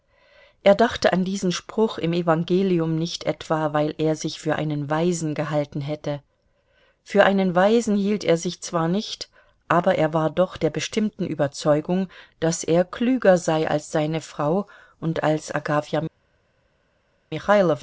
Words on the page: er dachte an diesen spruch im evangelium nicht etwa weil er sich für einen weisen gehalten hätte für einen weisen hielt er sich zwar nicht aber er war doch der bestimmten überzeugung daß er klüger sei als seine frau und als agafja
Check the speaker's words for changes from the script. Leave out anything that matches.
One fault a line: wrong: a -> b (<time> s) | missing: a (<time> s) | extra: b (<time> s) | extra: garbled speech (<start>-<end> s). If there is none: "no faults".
no faults